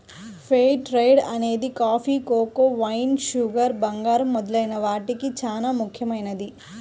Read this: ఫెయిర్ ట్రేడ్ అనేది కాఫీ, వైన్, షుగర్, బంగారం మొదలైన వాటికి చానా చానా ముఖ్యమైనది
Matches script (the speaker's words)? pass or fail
fail